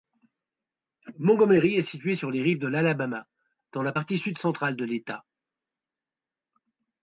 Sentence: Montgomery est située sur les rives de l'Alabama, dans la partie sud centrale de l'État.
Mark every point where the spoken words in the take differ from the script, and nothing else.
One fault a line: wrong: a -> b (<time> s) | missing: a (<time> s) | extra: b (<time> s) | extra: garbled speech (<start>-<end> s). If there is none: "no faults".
no faults